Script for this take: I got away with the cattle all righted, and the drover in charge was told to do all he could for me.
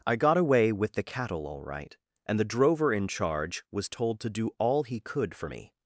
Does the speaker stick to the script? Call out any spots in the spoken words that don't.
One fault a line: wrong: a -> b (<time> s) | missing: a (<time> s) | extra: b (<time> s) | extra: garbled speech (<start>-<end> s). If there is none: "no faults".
wrong: righted -> right (1.6 s)